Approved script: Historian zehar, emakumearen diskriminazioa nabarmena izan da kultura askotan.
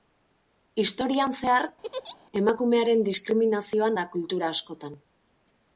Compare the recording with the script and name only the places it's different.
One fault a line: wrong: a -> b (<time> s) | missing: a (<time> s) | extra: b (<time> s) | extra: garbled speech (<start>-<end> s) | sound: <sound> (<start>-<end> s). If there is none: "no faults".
sound: laugh (1.8-2.2 s)
missing: nabarmena izan (3.9 s)